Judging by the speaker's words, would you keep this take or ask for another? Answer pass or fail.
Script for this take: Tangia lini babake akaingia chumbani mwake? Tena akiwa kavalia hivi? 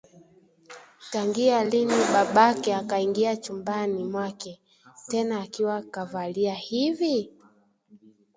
pass